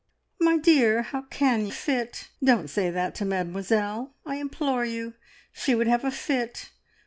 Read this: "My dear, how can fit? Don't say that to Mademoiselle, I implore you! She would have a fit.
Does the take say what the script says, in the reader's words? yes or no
yes